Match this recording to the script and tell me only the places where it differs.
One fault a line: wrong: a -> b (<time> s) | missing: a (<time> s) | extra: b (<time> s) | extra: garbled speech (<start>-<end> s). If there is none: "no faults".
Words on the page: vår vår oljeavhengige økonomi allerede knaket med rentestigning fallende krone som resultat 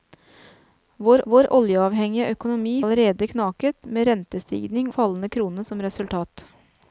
no faults